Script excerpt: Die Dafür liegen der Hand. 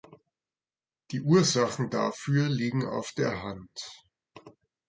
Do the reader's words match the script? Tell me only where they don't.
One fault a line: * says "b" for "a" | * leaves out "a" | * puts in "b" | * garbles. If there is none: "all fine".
* puts in "Ursachen"
* puts in "auf"